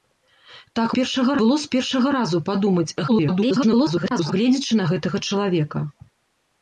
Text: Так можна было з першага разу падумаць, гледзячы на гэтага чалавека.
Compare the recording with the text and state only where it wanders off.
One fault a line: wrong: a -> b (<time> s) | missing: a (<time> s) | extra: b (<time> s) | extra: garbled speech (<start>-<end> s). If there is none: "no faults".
wrong: можна -> першага (1.0 s)
extra: garbled speech (3.1-4.3 s)